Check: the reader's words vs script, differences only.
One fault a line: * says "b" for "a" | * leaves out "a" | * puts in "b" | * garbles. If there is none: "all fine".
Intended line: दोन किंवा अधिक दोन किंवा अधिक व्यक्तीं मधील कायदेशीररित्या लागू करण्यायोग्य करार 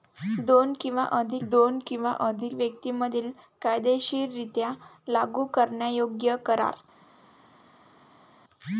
all fine